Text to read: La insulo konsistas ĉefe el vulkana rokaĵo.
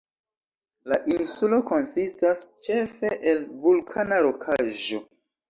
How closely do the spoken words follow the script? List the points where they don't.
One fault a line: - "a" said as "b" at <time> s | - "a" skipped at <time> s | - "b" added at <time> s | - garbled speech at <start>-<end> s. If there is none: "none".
none